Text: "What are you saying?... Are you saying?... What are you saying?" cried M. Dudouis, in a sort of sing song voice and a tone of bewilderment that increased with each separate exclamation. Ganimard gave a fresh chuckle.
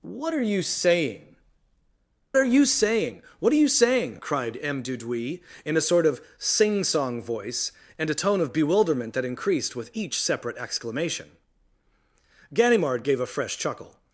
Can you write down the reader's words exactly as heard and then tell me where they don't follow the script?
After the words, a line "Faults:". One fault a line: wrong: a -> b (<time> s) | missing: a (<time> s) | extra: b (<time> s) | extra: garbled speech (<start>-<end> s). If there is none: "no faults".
"What are you saying?... Are you saying?... What are you saying?" cried M. Dudouis, in a sort of sing song voice and a tone of bewilderment that increased with each separate exclamation. Ganimard gave a fresh chuckle.
Faults:
no faults